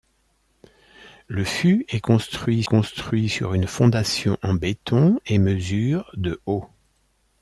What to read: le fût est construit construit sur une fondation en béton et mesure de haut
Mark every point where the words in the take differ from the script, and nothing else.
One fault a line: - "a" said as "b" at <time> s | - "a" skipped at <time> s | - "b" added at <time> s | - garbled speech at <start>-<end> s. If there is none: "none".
none